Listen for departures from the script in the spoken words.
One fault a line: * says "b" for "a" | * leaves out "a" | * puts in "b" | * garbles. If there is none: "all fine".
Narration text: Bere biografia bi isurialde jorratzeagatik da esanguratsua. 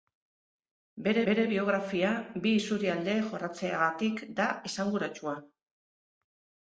* puts in "bere"